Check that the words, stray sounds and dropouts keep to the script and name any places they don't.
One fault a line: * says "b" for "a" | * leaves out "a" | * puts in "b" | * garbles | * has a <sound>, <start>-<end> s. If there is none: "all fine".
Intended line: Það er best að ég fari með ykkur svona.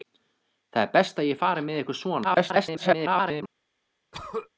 * garbles
* has a throat clearing, 4.1-4.5 s